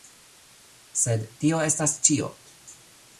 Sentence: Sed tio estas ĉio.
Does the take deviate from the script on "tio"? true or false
false